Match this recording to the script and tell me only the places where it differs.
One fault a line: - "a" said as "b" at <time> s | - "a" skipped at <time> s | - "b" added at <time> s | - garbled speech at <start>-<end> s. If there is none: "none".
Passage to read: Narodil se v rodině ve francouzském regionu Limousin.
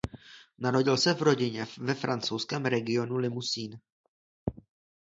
none